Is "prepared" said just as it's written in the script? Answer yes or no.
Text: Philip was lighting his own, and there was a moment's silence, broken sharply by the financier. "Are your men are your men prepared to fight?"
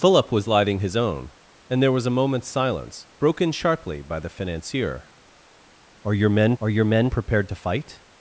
yes